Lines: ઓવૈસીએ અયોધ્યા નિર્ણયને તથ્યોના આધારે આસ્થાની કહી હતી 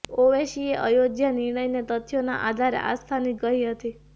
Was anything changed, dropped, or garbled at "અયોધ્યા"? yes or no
no